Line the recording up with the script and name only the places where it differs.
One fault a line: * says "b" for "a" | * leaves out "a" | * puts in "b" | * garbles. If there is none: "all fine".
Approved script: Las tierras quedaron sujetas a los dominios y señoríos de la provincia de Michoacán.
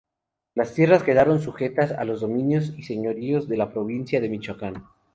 all fine